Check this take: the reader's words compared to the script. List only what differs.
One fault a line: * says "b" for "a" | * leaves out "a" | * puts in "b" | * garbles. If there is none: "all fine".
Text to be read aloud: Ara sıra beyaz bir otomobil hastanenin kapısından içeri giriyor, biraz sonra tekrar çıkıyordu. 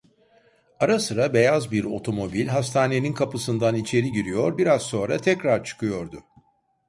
all fine